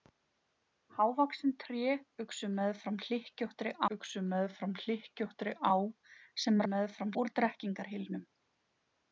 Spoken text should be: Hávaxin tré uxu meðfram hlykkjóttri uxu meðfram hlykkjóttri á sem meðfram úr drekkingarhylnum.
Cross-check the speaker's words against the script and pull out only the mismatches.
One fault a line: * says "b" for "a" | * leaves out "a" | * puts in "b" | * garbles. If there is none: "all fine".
all fine